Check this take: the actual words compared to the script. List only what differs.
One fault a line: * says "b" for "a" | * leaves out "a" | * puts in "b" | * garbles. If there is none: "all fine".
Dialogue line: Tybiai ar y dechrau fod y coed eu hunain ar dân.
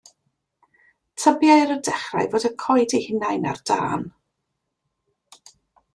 all fine